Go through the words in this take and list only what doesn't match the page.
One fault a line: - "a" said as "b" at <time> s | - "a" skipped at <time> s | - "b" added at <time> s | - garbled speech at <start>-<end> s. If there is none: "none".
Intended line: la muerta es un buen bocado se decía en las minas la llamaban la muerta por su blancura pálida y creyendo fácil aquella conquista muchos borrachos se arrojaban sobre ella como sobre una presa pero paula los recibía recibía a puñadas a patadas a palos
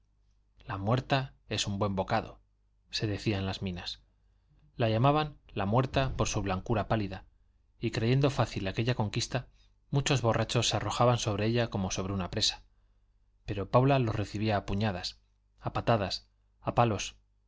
- "recibía" skipped at 14.6 s